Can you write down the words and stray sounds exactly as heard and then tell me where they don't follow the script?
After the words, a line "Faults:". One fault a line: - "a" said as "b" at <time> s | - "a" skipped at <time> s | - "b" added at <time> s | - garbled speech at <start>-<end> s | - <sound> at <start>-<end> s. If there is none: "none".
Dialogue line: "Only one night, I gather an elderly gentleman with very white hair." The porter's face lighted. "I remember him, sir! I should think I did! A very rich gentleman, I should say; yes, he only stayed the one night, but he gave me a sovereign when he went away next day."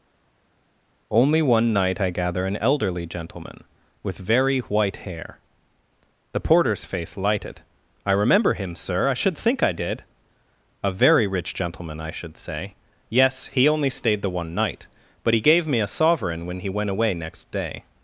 "Only one night, I gather an elderly gentleman with very white hair." The porter's face lighted. "I remember him, sir! I should think I did! A very rich gentleman, I should say; yes, he only stayed the one night, but he gave me a sovereign when he went away next day."
Faults:
none